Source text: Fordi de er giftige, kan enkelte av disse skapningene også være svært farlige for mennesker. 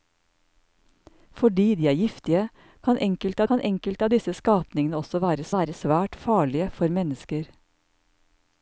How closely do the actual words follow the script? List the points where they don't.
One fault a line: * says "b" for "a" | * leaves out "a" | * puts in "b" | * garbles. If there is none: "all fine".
* puts in "kan enkelte"
* puts in "være"